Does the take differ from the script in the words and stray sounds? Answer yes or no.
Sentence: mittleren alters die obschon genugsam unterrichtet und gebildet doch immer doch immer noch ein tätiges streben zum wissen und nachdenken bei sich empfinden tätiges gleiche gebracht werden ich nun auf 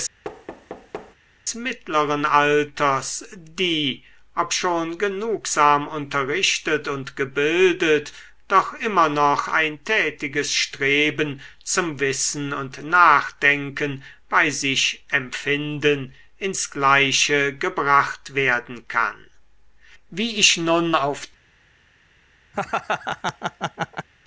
yes